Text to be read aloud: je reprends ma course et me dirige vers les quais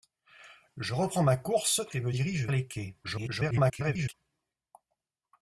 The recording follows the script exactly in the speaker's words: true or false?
false